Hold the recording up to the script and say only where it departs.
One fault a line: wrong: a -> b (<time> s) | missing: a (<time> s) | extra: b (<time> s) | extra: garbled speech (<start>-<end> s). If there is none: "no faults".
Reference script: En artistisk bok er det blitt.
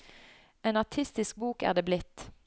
no faults